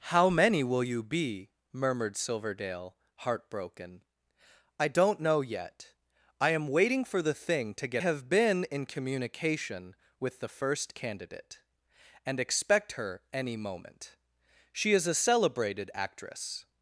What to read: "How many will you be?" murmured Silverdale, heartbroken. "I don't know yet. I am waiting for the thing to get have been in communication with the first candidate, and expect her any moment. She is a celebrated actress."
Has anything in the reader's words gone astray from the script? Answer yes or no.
no